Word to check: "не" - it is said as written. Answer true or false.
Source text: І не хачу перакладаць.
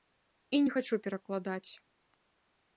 true